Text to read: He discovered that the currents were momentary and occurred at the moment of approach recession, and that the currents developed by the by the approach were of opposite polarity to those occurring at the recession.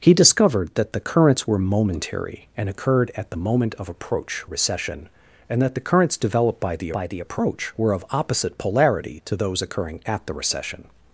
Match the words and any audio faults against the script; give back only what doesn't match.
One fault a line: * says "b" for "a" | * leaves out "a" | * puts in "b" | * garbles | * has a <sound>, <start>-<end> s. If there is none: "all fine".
all fine